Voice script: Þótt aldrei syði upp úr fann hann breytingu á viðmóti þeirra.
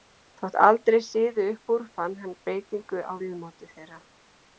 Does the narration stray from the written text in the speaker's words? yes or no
no